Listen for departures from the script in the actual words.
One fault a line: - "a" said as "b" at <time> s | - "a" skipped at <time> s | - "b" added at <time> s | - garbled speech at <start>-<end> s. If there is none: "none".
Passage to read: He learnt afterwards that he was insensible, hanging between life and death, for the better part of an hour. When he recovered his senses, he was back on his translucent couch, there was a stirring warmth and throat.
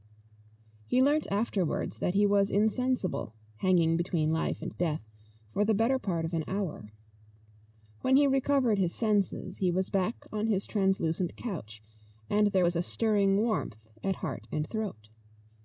- "and" added at 12.3 s
- "at heart" added at 14.0 s